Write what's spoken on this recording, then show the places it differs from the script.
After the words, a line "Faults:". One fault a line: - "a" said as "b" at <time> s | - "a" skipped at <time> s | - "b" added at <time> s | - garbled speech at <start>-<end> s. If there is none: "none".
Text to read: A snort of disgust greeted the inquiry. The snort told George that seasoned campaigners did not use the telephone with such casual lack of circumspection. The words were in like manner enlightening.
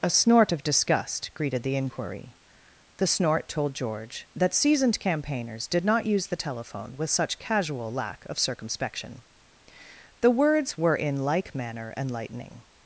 A snort of disgust greeted the inquiry. The snort told George that seasoned campaigners did not use the telephone with such casual lack of circumspection. The words were in like manner enlightening.
Faults:
none